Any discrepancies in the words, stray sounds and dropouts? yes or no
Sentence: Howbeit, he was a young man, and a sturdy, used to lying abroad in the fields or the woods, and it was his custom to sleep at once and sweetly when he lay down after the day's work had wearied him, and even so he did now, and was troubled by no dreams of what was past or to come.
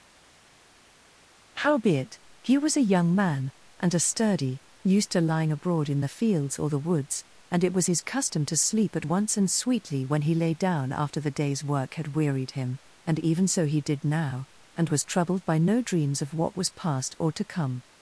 no